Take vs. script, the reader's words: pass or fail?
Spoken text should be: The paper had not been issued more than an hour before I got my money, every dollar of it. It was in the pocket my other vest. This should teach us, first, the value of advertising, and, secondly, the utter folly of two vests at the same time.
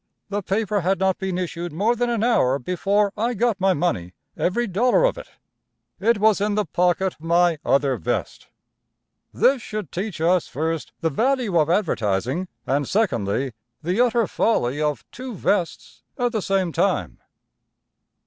pass